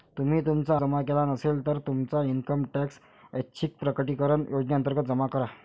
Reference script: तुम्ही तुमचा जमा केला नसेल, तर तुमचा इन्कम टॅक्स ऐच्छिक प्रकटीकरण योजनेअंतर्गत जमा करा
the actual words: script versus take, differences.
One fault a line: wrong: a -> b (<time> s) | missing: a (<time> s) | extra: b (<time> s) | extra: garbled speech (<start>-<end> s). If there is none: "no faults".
no faults